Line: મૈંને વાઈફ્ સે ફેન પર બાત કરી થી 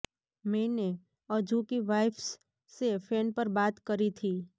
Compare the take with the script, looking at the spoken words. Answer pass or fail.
fail